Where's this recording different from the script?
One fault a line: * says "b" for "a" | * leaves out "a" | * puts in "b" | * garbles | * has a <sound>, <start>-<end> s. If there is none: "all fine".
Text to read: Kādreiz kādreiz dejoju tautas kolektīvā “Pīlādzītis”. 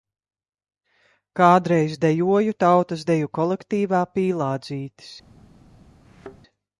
* leaves out "kādreiz"
* puts in "deju"
* has a thud, 6.0-6.4 s